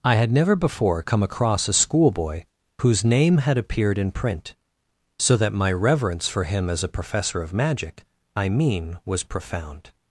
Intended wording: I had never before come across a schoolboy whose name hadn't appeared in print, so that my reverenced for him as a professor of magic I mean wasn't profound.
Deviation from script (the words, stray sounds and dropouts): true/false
true